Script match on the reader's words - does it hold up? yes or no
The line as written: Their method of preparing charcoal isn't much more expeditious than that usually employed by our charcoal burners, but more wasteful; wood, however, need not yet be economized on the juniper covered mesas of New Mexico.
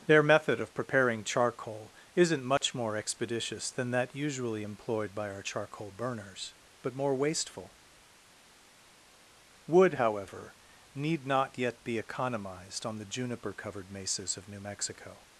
yes